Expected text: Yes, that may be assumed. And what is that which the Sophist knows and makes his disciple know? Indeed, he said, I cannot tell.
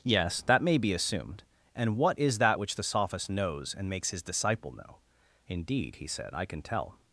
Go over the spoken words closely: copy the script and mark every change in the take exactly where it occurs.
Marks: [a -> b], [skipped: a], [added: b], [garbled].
Yes, that may be assumed. And what is that which the Sophist knows and makes his disciple know? Indeed, he said, I [cannot -> can] tell.